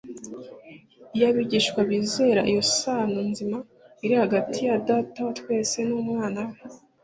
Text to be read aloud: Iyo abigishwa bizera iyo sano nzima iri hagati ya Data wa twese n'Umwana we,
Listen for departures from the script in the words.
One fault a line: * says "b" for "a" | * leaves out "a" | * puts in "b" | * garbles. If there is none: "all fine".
all fine